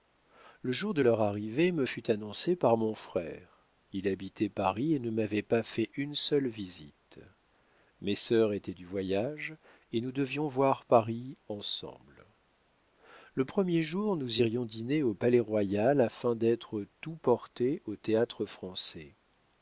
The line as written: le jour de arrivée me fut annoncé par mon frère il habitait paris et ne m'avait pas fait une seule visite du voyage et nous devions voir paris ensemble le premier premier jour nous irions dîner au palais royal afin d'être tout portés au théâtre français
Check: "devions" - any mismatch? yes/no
no